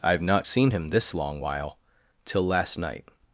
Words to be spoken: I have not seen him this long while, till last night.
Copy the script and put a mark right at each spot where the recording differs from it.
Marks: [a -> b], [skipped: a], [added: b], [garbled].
I have not seen him this long while, till last night.